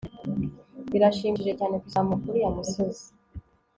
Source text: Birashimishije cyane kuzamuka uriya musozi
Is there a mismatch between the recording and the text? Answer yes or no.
no